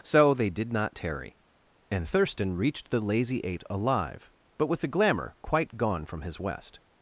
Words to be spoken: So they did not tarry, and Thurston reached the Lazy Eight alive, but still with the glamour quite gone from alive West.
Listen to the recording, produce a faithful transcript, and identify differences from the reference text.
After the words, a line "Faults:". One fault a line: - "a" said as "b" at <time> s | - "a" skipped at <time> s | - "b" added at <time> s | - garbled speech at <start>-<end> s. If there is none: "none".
So they did not tarry, and Thurston reached the Lazy Eight alive, but with the glamour quite gone from his West.
Faults:
- "still" skipped at 4.7 s
- "alive" said as "his" at 6.2 s